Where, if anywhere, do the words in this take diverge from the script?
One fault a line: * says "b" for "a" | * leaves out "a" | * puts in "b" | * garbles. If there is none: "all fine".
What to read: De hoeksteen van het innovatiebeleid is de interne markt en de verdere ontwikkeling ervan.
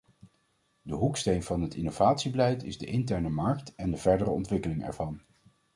all fine